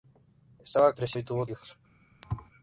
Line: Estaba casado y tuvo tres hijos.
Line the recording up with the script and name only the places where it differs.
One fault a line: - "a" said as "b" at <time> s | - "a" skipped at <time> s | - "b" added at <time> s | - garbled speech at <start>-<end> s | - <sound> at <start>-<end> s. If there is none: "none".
- "casado" said as "tres" at 0.9 s
- "tres" skipped at 1.4 s
- thud at 2.2-2.5 s